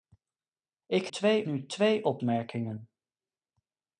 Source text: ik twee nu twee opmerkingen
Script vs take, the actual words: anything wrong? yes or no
no